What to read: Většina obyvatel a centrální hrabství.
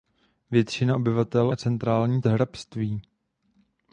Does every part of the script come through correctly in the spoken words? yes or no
yes